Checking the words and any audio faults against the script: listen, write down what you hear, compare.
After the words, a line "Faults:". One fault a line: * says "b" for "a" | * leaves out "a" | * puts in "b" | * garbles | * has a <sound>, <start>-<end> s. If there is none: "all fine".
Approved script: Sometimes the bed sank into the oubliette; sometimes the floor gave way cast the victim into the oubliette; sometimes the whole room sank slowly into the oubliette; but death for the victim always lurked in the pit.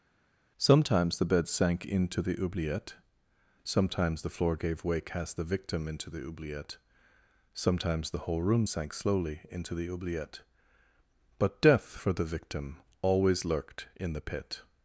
Sometimes the bed sank into the oubliette; sometimes the floor gave way cast the victim into the oubliette; sometimes the whole room sank slowly into the oubliette; but death for the victim always lurked in the pit.
Faults:
all fine